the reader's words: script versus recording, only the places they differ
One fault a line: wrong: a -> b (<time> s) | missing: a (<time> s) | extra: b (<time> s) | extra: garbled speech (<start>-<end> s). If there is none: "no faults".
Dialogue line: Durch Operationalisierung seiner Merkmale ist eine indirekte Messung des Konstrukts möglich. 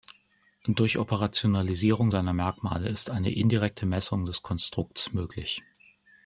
no faults